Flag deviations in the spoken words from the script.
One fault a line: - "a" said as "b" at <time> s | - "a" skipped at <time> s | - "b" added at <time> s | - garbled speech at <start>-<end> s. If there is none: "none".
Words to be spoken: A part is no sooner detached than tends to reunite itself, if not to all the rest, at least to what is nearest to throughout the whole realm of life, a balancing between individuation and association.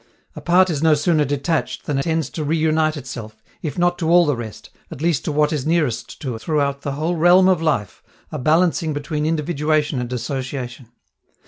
none